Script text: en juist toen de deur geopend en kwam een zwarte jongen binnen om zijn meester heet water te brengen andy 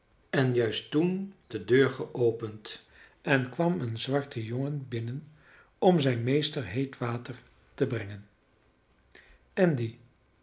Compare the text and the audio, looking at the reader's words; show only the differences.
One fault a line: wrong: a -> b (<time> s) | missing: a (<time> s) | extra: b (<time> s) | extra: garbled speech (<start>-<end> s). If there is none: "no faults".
no faults